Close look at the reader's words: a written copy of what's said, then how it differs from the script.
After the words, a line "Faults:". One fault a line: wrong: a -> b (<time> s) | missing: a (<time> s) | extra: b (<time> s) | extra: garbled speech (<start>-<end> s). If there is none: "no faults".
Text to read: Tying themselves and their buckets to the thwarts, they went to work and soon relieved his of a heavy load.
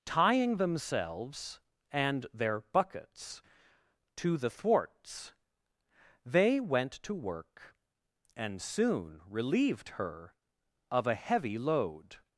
Tying themselves and their buckets to the thwarts, they went to work and soon relieved her of a heavy load.
Faults:
wrong: his -> her (9.9 s)